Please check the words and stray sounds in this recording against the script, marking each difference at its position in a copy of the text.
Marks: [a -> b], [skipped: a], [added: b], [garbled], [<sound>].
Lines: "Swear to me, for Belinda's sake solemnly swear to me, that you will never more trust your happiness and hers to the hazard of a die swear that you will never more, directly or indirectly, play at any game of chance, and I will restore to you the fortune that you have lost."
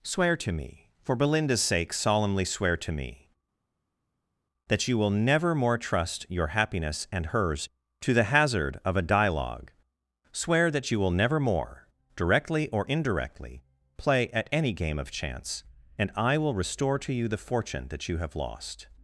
"Swear to me, for Belinda's sake solemnly swear to me, that you will never more trust your happiness and hers to the hazard of a [die -> dialogue] swear that you will never more, directly or indirectly, play at any game of chance, and I will restore to you the fortune that you have lost."